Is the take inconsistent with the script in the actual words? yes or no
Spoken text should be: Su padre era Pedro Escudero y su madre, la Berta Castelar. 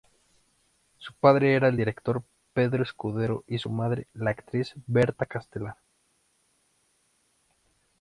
yes